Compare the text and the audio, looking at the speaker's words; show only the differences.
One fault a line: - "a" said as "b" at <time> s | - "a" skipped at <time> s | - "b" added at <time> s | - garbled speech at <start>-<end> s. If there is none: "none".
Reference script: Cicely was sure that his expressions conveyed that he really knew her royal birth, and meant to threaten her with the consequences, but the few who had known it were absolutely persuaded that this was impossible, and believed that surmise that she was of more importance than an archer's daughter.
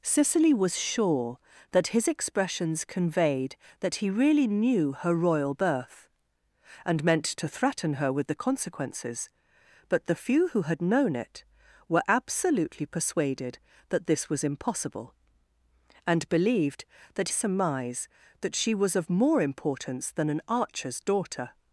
none